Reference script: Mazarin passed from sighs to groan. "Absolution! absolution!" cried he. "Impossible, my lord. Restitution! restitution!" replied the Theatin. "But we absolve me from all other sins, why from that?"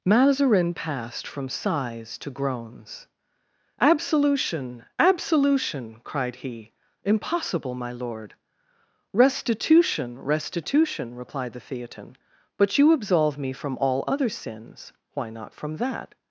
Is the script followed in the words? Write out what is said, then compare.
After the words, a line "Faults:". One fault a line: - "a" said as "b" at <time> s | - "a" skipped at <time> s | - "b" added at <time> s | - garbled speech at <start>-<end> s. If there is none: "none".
Mazarin passed from sighs to groans. "Absolution! absolution!" cried he. "Impossible, my lord. Restitution! restitution!" replied the Theatin. "But you absolve me from all other sins, why not from that?"
Faults:
- "groan" said as "groans" at 2.3 s
- "we" said as "you" at 12.8 s
- "not" added at 15.3 s